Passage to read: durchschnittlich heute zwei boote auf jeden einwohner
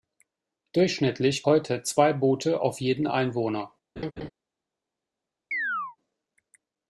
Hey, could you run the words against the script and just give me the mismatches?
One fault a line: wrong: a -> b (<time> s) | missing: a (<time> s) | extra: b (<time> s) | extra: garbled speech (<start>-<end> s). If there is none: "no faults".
no faults